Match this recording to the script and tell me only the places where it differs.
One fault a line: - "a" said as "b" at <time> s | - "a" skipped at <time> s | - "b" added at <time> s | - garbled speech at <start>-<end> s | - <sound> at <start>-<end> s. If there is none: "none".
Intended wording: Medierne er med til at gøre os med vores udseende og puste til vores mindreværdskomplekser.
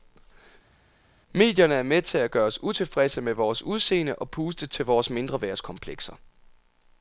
- "utilfredse" added at 2.6 s